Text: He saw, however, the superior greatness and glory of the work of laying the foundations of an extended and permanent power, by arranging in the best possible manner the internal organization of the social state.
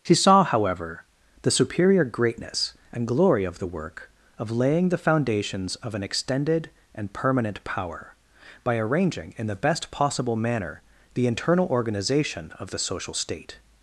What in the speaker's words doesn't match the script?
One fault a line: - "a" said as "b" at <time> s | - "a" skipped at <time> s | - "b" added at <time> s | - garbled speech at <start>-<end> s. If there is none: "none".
- "He" said as "She" at 0.0 s